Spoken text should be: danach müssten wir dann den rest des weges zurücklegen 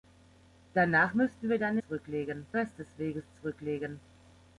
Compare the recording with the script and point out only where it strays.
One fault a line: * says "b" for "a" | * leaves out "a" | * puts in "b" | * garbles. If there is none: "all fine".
* says "zurücklegen" for "den"